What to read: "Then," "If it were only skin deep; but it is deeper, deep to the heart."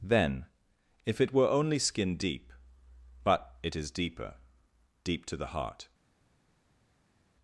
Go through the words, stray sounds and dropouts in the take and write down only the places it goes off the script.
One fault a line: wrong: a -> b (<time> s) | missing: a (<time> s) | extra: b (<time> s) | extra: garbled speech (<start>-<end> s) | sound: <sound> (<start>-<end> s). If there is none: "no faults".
no faults